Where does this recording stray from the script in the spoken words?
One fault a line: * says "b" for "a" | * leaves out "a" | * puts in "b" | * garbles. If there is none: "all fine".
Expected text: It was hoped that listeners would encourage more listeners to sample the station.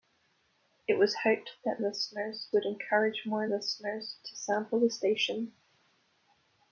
all fine